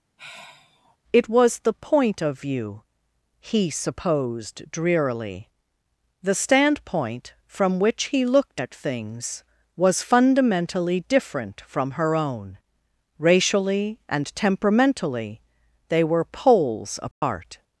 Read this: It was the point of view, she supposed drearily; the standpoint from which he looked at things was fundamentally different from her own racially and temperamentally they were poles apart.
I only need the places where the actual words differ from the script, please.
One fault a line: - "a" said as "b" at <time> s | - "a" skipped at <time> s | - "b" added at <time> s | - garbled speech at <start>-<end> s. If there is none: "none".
- "she" said as "he" at 3.4 s